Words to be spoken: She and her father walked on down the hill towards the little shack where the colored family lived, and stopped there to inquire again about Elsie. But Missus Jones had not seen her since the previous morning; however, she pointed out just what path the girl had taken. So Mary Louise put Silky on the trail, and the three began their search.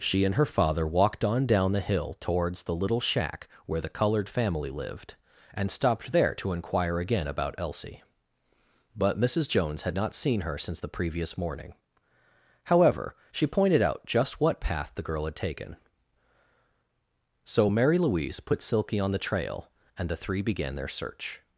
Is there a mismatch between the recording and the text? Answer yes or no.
no